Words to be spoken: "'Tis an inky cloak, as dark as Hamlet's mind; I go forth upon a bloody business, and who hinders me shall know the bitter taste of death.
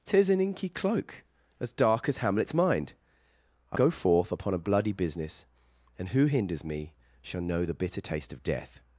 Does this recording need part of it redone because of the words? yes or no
no